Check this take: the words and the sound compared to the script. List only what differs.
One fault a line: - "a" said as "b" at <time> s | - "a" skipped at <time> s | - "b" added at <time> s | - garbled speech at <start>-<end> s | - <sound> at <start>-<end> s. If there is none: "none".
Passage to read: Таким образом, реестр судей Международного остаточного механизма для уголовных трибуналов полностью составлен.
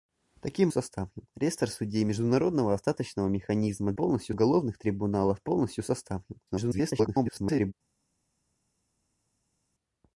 - "образом" said as "составлен" at 0.7 s
- "для" said as "полностью" at 3.9 s
- garbled speech at 6.5-7.7 s